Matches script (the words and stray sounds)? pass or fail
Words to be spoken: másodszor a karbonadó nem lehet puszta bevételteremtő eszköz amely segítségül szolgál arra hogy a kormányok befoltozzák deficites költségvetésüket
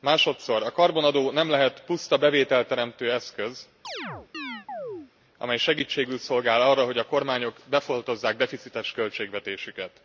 fail